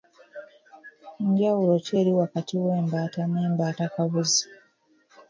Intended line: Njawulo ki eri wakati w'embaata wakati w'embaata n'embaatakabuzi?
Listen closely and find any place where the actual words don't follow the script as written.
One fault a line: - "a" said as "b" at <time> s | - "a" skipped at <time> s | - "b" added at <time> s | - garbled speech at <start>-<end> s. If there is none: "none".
- "wakati w'embaata" skipped at 3.2 s